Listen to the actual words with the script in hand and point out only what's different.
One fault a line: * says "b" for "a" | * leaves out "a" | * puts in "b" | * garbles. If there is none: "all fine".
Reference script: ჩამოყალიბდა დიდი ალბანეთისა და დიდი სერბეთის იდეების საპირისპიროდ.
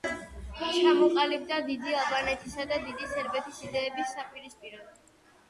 all fine